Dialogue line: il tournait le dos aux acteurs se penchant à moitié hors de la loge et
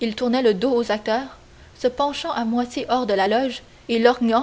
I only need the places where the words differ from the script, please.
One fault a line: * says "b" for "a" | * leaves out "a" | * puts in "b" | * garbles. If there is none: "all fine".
all fine